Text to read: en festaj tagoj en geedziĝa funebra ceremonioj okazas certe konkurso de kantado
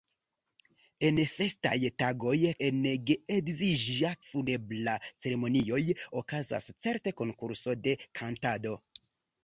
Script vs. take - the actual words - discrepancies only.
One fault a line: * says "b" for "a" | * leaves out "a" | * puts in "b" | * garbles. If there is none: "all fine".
all fine